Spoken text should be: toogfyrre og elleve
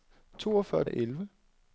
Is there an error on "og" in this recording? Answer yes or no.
no